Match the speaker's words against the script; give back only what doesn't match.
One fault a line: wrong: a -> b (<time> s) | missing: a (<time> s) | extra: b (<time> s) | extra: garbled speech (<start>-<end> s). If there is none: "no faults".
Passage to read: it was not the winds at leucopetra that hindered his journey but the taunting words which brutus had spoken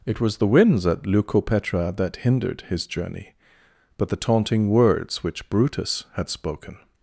missing: not (0.4 s)